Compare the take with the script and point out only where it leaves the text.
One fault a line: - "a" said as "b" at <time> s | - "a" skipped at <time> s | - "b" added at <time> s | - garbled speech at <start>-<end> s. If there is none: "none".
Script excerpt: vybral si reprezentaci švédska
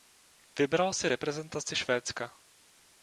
none